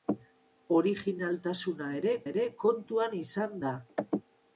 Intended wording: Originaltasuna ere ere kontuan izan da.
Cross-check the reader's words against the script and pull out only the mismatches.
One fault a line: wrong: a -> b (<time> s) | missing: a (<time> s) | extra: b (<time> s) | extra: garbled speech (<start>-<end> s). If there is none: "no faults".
no faults